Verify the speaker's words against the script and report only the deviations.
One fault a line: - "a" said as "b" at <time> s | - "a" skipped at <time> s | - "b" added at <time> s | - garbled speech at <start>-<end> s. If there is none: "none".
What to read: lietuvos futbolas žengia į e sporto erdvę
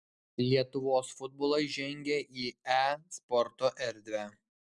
none